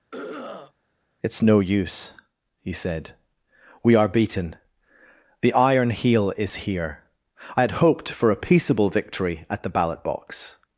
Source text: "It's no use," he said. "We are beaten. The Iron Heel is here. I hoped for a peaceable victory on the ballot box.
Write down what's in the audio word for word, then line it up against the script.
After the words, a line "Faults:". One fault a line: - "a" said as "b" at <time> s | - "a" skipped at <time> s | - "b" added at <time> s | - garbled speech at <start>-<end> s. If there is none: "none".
"It's no use," he said. "We are beaten. The Iron Heel is here. I had hoped for a peaceable victory at the ballot box.
Faults:
- "had" added at 7.6 s
- "on" said as "at" at 9.5 s